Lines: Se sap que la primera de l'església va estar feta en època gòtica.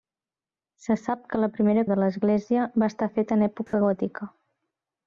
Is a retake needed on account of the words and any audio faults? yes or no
yes